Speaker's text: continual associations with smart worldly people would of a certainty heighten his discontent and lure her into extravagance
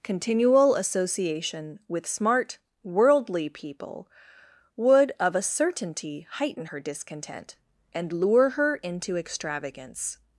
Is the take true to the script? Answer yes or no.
no